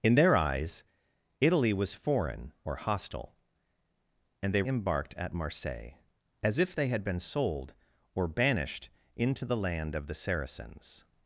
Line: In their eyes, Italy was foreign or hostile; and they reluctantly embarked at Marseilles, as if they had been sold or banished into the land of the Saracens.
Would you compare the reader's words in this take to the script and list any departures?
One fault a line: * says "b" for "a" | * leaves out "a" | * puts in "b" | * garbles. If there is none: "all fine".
* leaves out "reluctantly"